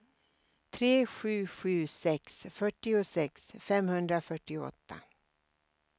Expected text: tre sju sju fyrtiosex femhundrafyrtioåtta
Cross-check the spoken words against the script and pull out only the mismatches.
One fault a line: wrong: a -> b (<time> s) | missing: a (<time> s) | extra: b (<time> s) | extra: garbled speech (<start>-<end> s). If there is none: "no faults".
extra: sex (1.9 s)